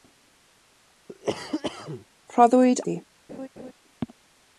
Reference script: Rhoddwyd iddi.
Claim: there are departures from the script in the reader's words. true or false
false